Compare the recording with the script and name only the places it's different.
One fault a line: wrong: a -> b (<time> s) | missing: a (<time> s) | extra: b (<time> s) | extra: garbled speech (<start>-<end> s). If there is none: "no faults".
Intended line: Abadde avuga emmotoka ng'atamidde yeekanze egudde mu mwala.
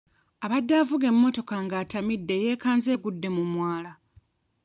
no faults